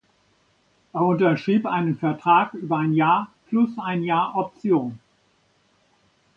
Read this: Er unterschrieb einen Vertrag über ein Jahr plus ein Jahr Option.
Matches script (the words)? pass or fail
pass